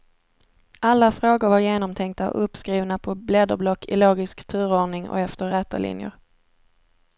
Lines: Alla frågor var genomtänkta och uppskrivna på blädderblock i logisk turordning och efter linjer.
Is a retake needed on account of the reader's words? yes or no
yes